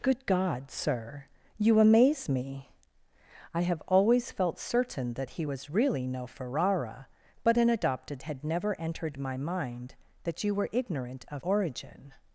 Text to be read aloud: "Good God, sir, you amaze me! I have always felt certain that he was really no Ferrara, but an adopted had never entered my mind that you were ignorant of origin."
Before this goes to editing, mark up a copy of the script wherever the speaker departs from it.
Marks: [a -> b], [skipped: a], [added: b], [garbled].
"Good God, sir, you amaze me! I have always felt certain that he was really no Ferrara, but an adopted had never entered my mind that you were ignorant of origin."